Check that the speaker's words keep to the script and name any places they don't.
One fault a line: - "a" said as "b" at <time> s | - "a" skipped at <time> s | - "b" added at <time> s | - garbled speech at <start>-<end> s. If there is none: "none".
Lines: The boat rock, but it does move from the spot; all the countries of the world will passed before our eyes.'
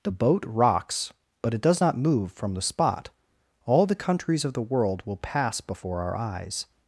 - "rock" said as "rocks" at 0.5 s
- "not" added at 1.8 s
- "passed" said as "pass" at 5.2 s